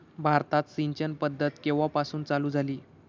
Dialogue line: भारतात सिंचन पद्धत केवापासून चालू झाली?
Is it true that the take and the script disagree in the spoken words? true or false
false